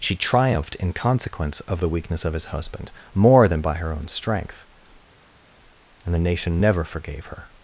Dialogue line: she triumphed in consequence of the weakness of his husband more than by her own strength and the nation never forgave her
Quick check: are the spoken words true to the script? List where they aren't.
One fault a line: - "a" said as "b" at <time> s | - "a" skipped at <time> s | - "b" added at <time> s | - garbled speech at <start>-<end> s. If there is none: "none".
none